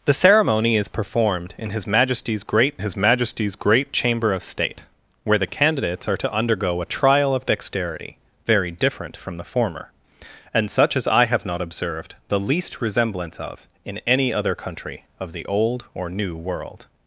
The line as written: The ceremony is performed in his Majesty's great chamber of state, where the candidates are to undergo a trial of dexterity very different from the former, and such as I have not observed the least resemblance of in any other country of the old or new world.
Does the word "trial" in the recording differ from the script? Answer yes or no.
no